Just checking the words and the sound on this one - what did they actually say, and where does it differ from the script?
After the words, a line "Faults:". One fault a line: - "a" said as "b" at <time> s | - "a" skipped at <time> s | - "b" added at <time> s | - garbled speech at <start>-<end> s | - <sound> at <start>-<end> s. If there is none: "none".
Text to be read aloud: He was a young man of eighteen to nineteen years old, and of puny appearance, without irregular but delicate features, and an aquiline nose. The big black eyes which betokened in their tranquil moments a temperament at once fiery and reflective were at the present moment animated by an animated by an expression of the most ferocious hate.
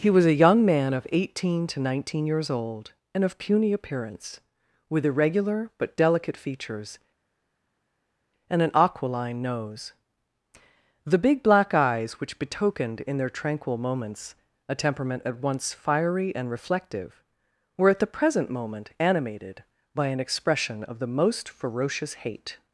He was a young man of eighteen to nineteen years old, and of puny appearance, with irregular but delicate features, and an aquiline nose. The big black eyes which betokened in their tranquil moments a temperament at once fiery and reflective were at the present moment animated by an expression of the most ferocious hate.
Faults:
- "without" said as "with" at 4.9 s
- "animated by an" skipped at 20.2 s